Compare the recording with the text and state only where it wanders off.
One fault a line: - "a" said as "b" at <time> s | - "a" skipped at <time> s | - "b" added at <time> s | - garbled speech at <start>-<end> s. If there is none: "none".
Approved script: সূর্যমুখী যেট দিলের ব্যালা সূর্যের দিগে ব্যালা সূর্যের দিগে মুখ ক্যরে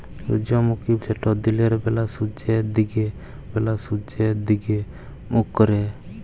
none